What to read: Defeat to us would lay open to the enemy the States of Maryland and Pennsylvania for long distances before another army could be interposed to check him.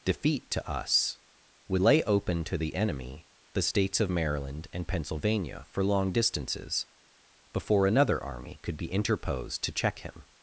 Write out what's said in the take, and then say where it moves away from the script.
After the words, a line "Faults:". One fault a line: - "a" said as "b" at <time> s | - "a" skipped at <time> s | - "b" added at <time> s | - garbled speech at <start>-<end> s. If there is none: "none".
Defeat to us would lay open to the enemy the States of Maryland and Pennsylvania for long distances before another army could be interposed to check him.
Faults:
none